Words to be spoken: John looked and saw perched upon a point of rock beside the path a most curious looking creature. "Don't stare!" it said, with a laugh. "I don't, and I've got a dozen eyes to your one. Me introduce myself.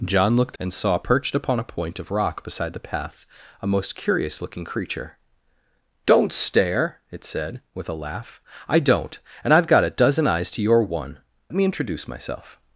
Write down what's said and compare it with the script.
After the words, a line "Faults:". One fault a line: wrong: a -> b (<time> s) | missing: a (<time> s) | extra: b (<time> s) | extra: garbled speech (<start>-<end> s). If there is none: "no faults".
John looked and saw perched upon a point of rock beside the path a most curious looking creature. "Don't stare!" it said, with a laugh. "I don't, and I've got a dozen eyes to your one. Me introduce myself.
Faults:
no faults